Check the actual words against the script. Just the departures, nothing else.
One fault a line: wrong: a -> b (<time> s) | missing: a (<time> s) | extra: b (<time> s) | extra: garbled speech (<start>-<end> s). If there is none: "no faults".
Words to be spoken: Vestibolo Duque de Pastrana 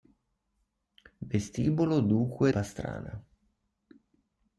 missing: de (2.5 s)